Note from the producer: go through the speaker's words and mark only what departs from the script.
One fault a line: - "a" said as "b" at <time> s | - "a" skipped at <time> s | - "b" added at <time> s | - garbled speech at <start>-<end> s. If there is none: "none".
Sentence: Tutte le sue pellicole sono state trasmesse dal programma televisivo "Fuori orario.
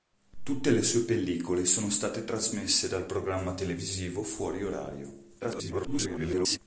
- garbled speech at 5.4-6.6 s